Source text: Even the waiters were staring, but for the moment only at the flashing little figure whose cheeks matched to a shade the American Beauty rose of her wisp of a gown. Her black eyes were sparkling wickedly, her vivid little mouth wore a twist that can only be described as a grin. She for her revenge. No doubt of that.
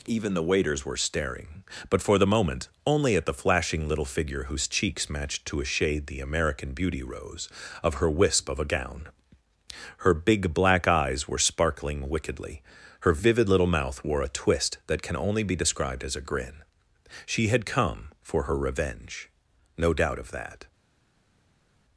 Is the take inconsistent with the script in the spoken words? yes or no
yes